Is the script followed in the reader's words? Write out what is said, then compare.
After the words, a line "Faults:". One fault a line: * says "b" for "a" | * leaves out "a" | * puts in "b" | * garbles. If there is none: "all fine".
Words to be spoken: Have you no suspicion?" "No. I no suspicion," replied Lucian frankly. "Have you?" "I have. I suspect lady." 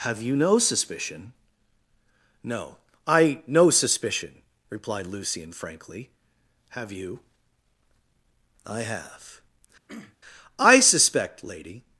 Have you no suspicion?" "No. I no suspicion," replied Lucian frankly. "Have you?" "I have. I suspect lady."
Faults:
all fine